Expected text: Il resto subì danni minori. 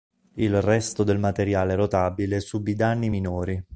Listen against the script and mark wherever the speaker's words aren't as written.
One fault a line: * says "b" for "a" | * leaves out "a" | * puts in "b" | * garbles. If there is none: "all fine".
* puts in "del materiale rotabile"